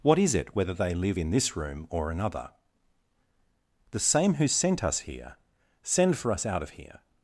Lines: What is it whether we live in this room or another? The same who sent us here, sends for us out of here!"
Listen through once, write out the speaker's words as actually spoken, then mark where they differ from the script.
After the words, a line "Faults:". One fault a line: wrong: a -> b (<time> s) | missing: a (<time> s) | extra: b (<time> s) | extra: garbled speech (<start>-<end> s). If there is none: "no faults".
What is it whether they live in this room or another? The same who sent us here, send for us out of here!"
Faults:
wrong: we -> they (0.7 s)
wrong: sends -> send (5.8 s)